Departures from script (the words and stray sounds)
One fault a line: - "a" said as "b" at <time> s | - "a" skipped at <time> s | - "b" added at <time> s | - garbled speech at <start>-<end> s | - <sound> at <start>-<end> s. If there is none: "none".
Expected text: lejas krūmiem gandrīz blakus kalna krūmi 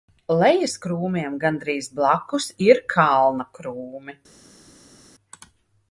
- "ir" added at 2.7 s